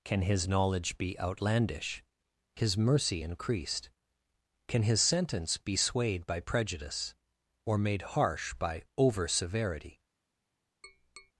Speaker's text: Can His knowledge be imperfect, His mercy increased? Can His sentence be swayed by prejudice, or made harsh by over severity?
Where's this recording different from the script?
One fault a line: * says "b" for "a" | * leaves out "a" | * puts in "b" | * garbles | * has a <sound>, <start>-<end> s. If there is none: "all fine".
* says "outlandish" for "imperfect"
* has a tap, 10.8-11.3 s